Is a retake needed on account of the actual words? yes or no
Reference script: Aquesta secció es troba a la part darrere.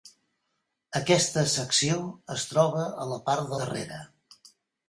no